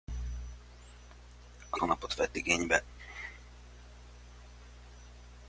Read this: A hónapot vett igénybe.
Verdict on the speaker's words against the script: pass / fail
pass